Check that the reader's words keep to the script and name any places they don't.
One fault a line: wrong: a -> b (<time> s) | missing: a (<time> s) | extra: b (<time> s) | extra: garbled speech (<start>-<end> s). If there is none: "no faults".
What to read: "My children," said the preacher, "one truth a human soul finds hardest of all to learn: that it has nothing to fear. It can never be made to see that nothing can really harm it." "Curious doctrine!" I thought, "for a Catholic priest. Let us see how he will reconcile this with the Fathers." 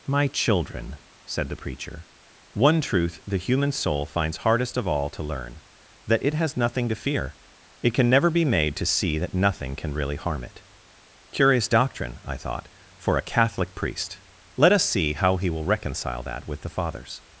wrong: a -> the (3.3 s)
wrong: this -> that (16.2 s)